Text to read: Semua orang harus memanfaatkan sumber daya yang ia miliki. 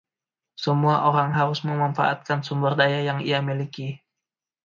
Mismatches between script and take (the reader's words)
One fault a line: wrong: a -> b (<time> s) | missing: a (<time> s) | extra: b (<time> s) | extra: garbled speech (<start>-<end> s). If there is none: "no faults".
no faults